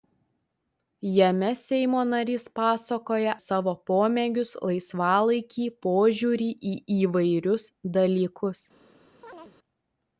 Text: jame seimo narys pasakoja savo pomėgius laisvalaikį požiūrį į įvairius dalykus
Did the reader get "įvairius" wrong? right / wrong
right